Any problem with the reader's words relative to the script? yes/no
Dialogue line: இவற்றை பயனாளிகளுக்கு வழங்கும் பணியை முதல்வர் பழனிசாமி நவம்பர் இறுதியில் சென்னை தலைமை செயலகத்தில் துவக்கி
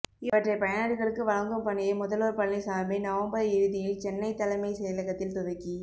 no